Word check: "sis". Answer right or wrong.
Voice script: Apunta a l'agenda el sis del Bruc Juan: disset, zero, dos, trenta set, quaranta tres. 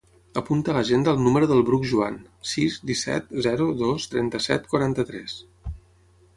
wrong